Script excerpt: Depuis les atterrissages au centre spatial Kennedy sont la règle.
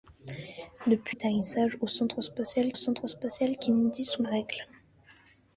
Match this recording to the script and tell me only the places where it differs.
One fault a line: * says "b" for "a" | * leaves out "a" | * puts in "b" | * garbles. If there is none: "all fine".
* leaves out "les"
* puts in "centre spatial"
* leaves out "la"